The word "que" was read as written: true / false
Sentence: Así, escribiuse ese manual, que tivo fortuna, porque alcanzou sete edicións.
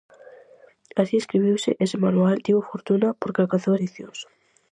false